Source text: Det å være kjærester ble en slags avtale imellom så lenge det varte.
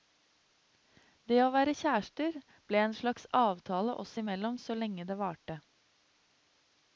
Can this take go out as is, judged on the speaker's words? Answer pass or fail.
fail